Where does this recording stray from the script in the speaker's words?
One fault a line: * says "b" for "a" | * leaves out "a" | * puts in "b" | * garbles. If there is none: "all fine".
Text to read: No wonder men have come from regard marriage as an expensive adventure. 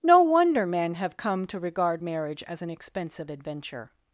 * says "to" for "from"